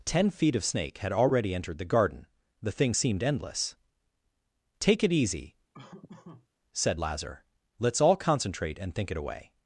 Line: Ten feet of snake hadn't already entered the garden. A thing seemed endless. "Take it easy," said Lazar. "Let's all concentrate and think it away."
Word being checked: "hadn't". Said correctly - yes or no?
no